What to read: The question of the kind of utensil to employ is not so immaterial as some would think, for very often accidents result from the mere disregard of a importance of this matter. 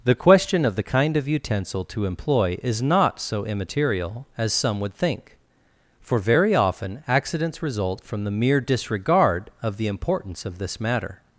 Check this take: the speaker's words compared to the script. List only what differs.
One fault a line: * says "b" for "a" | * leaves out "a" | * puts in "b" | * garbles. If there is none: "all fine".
* says "the" for "a"